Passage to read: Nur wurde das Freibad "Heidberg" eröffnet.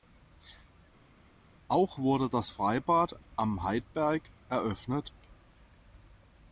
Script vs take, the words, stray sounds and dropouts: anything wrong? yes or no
yes